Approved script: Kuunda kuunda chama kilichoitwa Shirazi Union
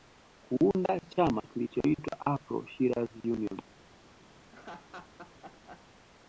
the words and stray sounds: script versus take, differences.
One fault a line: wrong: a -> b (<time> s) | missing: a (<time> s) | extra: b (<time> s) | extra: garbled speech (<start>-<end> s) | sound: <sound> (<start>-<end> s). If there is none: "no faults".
missing: kuunda (1.0 s)
extra: Afro (2.3 s)
sound: laugh (4.4-5.9 s)